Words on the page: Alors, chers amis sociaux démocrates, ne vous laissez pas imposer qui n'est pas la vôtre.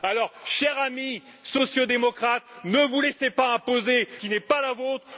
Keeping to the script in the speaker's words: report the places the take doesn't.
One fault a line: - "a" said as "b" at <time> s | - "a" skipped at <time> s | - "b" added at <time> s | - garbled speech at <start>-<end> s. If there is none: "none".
none